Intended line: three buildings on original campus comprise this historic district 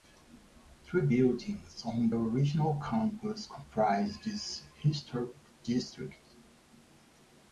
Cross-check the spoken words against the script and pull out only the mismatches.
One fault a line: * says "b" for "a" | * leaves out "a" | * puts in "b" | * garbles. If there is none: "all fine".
all fine